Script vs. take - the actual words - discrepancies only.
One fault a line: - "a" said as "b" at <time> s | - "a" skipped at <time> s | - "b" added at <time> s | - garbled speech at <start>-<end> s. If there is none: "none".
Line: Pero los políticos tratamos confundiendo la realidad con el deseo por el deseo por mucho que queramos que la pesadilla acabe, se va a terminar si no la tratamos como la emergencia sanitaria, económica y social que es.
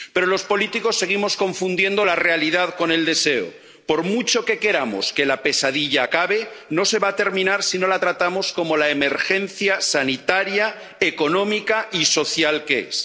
- "tratamos" said as "seguimos" at 1.0 s
- "el deseo por" skipped at 4.0 s
- "no" added at 6.7 s